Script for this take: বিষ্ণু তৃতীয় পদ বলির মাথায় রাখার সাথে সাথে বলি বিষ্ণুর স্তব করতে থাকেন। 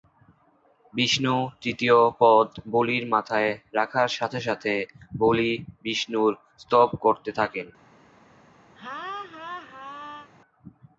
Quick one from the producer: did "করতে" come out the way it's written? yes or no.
yes